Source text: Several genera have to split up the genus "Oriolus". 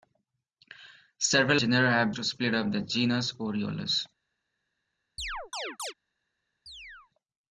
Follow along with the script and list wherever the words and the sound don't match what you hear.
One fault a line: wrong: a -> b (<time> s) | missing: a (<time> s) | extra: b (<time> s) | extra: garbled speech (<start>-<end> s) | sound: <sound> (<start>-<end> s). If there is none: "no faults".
sound: chirp (5.2-5.9 s)
sound: chirp (6.7-7.1 s)